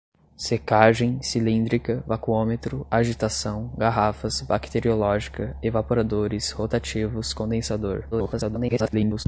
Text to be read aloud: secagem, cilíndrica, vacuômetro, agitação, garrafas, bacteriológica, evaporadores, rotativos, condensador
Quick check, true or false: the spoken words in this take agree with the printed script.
false